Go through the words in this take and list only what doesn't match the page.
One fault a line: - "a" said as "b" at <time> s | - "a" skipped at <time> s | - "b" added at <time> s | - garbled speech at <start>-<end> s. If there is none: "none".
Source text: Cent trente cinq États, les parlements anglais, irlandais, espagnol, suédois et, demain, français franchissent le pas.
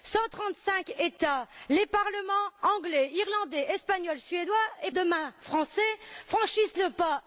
none